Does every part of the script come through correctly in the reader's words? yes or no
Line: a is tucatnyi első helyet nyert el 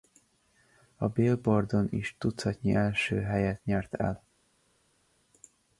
no